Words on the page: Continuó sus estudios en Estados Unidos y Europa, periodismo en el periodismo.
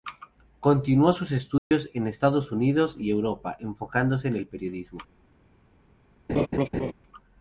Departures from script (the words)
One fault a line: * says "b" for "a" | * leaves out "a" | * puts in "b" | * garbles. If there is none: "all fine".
* says "enfocándose" for "periodismo"